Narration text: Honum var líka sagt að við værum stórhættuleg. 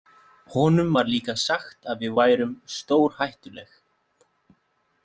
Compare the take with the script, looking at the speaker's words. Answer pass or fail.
pass